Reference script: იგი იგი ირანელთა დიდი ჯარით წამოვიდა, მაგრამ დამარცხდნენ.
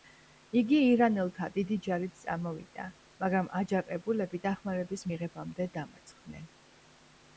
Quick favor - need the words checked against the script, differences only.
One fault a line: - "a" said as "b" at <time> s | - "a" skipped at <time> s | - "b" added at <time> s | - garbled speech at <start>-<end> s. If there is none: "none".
- "იგი" skipped at 0.8 s
- "აჯანყებულები დახმარების მიღებამდე" added at 3.6 s